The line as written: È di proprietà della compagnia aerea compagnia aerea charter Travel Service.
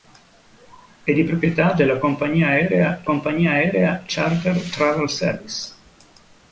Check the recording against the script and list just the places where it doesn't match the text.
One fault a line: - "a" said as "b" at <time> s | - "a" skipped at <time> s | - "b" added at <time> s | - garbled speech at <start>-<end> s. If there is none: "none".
none